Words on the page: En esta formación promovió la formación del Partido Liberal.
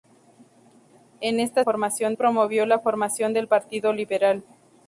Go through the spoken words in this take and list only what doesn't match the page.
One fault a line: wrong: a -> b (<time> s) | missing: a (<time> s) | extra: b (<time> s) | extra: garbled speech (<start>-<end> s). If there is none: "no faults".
no faults